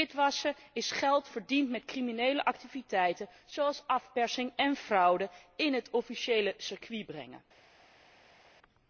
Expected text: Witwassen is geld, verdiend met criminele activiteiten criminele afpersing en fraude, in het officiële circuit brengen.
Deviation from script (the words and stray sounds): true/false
true